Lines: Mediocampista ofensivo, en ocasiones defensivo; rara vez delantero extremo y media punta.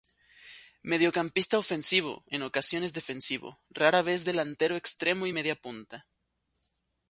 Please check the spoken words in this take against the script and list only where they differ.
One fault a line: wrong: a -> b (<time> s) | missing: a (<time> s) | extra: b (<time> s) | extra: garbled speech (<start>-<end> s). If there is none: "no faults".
no faults